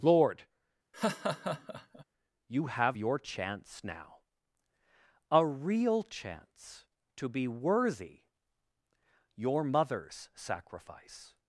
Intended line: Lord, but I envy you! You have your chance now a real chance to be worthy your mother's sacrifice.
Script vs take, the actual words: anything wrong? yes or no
yes